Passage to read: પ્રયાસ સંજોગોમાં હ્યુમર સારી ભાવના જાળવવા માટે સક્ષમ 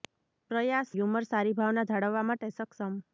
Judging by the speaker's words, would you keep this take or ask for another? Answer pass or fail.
fail